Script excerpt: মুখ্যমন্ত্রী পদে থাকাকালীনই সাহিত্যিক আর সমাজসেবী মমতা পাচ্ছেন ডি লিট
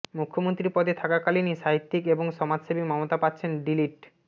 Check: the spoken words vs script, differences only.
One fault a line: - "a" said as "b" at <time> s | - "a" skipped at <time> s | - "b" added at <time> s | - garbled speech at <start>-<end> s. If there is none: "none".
- "আর" said as "এবং" at 2.1 s